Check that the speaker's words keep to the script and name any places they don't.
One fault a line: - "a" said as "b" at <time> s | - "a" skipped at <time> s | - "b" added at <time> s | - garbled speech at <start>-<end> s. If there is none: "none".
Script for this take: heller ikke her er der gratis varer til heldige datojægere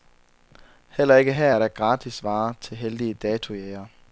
none